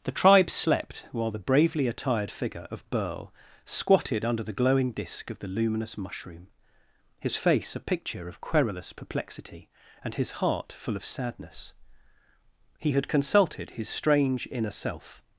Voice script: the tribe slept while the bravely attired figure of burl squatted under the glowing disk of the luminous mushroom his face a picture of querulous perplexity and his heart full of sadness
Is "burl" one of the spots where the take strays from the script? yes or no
no